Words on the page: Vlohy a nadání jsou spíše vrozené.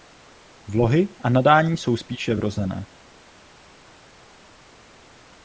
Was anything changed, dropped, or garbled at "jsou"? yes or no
no